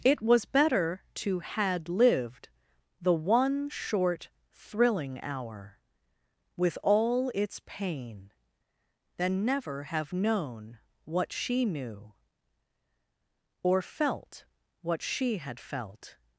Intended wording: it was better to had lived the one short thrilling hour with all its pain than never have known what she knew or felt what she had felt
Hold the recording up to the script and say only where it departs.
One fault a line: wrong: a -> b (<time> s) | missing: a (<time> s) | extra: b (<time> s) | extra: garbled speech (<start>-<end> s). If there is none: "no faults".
no faults